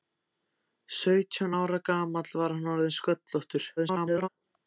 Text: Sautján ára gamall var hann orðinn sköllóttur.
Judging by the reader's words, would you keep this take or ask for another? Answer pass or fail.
fail